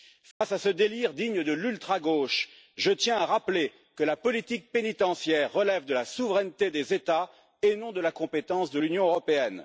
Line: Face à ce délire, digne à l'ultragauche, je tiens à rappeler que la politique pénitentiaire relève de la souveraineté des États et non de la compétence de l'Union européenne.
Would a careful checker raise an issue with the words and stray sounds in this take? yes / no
yes